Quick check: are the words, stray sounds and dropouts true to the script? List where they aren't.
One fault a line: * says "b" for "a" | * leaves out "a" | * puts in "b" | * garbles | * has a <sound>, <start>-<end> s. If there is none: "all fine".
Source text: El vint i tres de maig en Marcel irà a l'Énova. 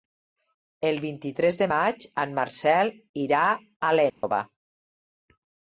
* has a dropout, 4.1-4.2 s